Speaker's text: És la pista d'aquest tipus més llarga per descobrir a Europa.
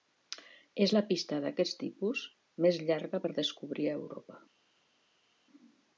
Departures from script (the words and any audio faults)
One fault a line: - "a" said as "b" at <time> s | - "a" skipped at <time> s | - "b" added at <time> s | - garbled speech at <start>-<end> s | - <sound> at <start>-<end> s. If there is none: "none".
none